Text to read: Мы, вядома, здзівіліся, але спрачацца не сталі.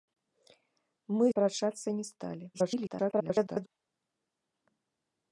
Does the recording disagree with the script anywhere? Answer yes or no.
yes